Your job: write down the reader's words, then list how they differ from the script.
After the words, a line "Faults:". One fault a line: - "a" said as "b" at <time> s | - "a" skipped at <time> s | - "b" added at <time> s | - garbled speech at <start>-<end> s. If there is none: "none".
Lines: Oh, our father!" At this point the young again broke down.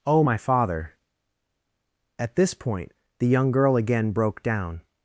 Oh, my father!" At this point the young girl again broke down.
Faults:
- "our" said as "my" at 0.2 s
- "girl" added at 3.5 s